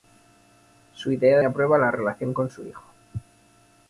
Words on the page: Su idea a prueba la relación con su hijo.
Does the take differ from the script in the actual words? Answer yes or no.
no